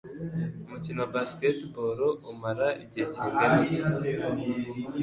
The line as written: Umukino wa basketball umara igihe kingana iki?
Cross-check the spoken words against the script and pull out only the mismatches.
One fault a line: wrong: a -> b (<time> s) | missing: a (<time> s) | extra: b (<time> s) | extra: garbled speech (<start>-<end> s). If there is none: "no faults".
no faults